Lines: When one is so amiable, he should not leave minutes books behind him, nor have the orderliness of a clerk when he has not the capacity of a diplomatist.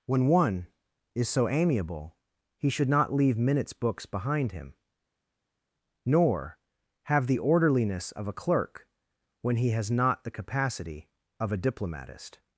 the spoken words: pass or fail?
pass